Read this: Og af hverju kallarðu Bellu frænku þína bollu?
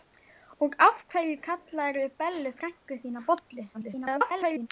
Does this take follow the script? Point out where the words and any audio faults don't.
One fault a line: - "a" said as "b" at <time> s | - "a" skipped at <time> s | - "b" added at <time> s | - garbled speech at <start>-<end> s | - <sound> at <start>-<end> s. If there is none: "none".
- garbled speech at 3.7-4.7 s